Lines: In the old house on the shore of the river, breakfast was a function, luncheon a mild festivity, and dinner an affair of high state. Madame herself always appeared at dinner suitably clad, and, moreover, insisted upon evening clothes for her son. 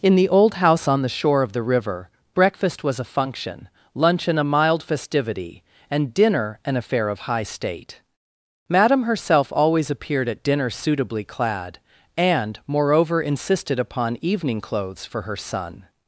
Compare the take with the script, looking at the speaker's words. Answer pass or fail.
pass